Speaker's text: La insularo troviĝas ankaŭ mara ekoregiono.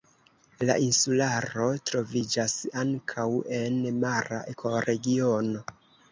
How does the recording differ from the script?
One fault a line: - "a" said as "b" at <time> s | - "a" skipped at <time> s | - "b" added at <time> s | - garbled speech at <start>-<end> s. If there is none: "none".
- "en" added at 3.6 s